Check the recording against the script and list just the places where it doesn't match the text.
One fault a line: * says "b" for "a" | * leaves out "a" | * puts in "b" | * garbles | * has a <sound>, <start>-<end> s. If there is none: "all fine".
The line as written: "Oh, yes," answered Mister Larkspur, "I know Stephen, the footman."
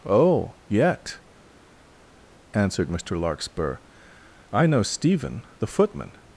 * says "yet" for "yes"